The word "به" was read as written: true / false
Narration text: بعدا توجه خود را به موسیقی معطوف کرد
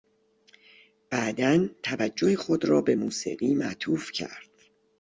true